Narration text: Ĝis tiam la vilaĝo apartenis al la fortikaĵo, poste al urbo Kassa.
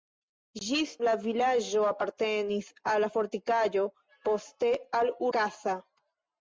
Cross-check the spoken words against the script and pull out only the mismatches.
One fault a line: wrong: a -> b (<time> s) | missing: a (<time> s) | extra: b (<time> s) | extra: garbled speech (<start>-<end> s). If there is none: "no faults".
missing: tiam (0.9 s)
missing: urbo (5.1 s)